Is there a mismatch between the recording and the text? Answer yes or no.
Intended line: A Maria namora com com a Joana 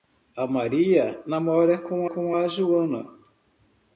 no